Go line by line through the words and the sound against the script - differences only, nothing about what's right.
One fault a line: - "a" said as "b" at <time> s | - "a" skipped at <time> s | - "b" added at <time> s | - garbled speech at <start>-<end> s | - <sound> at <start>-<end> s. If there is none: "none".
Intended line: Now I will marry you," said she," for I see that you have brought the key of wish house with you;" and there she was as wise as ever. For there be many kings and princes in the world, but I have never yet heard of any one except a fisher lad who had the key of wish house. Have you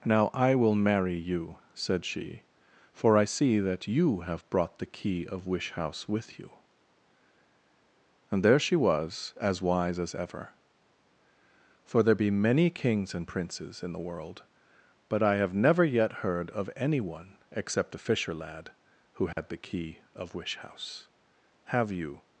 - dropout at 19.3-19.4 s